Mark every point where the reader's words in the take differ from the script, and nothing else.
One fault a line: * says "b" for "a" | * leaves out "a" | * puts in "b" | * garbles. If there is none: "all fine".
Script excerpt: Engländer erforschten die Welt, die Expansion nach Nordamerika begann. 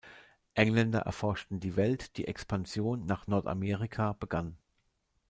all fine